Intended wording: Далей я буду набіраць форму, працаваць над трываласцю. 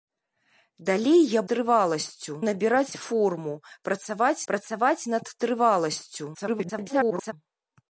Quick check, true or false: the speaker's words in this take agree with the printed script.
false